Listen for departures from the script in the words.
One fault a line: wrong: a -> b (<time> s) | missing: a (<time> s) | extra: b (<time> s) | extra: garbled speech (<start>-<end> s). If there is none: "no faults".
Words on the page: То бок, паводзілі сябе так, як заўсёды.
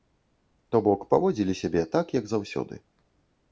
no faults